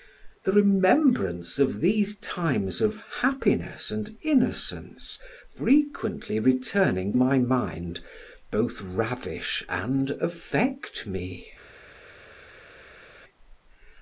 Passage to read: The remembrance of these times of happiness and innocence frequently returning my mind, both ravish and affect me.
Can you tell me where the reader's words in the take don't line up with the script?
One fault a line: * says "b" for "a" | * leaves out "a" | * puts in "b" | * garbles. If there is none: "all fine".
all fine